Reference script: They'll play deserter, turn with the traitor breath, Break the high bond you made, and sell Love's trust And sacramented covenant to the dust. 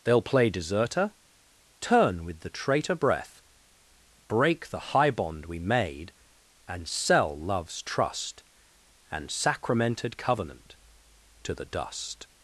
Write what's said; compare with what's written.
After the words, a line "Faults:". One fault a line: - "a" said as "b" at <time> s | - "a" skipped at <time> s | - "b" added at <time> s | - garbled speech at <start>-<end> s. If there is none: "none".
They'll play deserter, turn with the traitor breath, Break the high bond we made, and sell Love's trust And sacramented covenant to the dust.
Faults:
- "you" said as "we" at 5.5 s